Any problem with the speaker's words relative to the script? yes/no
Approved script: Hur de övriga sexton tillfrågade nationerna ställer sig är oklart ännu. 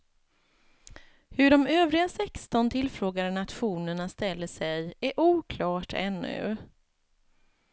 no